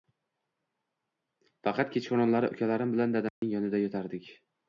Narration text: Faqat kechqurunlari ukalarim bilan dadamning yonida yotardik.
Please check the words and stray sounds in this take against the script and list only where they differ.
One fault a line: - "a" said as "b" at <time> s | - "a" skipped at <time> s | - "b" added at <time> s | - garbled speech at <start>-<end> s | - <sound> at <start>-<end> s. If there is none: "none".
- dropout at 3.3-3.4 s